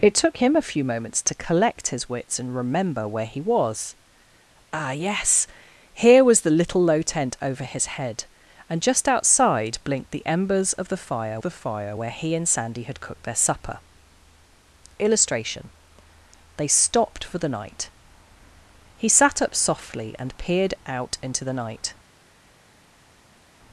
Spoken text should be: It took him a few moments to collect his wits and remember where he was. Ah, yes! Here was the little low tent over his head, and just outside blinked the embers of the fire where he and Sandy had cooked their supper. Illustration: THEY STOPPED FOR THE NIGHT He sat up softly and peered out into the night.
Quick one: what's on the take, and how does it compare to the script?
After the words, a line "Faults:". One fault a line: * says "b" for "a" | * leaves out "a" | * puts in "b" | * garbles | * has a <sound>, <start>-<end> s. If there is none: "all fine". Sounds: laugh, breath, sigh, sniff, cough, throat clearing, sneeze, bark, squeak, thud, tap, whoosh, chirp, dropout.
It took him a few moments to collect his wits and remember where he was. Ah, yes! Here was the little low tent over his head, and just outside blinked the embers of the fire the fire where he and Sandy had cooked their supper. Illustration: THEY STOPPED FOR THE NIGHT He sat up softly and peered out into the night.
Faults:
* puts in "the fire"